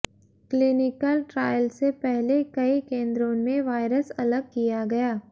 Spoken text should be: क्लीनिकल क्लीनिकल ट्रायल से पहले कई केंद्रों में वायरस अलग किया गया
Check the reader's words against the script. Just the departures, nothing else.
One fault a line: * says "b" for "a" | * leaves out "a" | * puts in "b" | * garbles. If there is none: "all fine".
* leaves out "क्लीनिकल"